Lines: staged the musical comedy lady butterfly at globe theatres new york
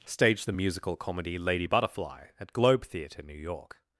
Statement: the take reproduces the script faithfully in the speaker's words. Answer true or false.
false